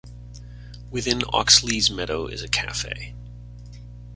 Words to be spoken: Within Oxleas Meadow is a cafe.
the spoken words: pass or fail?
pass